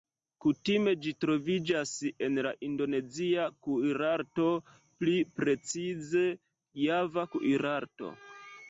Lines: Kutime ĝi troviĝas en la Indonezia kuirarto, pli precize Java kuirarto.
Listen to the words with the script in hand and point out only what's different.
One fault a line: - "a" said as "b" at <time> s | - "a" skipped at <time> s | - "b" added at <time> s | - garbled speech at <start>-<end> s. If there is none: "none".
none